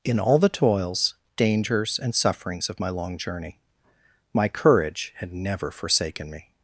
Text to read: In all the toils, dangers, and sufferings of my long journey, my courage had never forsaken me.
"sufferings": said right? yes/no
yes